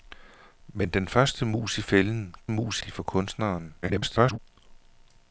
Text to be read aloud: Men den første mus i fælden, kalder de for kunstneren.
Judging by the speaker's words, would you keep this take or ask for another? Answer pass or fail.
fail